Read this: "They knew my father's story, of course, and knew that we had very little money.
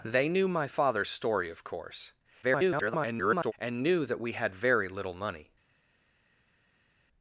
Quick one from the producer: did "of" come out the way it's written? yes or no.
yes